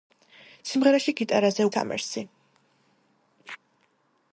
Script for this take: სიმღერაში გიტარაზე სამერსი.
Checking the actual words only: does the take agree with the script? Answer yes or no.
yes